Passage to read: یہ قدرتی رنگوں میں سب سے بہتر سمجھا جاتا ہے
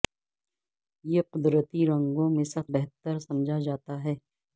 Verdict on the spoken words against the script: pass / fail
fail